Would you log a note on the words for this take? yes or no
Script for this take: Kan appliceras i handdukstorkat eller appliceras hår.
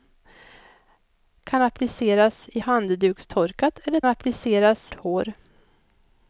no